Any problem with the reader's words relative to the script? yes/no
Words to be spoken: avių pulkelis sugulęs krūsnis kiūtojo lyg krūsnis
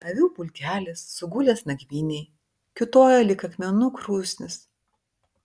yes